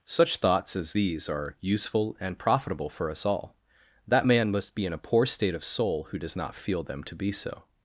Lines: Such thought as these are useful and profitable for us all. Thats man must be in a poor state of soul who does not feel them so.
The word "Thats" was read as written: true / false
false